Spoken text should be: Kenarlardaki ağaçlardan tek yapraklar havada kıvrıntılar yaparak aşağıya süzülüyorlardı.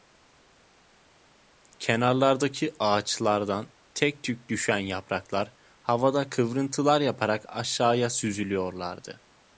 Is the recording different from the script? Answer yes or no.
yes